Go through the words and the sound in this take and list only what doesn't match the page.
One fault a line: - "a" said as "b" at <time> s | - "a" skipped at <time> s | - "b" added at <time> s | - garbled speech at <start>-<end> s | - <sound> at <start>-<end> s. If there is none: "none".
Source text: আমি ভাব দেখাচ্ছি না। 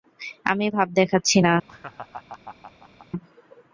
- laugh at 1.7-3.1 s